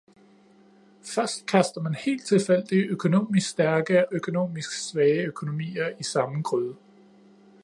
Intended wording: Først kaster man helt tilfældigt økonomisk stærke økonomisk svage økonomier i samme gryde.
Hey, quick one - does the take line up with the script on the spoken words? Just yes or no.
yes